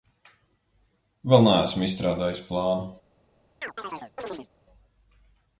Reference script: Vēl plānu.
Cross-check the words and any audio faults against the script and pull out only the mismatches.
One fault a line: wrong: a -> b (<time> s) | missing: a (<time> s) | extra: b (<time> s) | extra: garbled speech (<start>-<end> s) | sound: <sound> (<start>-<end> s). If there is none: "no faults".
extra: neesmu izstrādājis (1.5 s)
sound: chirp (3.6-4.5 s)